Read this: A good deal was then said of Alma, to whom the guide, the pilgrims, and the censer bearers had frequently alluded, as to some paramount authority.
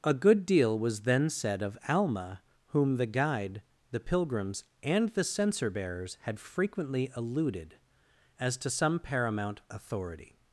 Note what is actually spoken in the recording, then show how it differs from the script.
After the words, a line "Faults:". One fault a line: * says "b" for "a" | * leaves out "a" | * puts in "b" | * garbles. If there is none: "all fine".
A good deal was then said of Alma, whom the guide, the pilgrims, and the censer bearers had frequently alluded, as to some paramount authority.
Faults:
* leaves out "to"